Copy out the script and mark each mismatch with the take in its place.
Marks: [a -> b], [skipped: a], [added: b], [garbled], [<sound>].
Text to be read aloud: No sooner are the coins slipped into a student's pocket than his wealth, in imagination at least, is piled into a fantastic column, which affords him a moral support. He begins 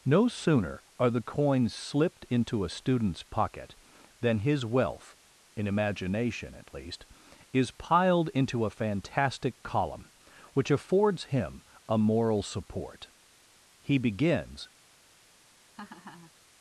No sooner are the coins slipped into a student's pocket than his wealth, in imagination at least, is piled into a fantastic column, which affords him a moral support. He begins [laugh]